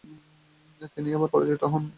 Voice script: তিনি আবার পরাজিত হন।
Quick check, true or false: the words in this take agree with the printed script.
true